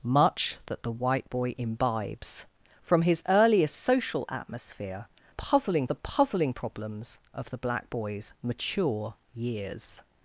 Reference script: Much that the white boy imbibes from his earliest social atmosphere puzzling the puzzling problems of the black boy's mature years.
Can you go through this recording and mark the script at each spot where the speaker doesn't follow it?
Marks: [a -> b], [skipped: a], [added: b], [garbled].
Much that the white boy imbibes from his earliest social atmosphere puzzling the puzzling problems of the black boy's mature years.